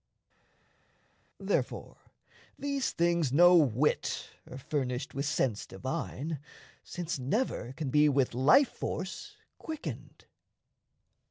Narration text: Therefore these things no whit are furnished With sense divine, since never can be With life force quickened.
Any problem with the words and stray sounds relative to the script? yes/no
no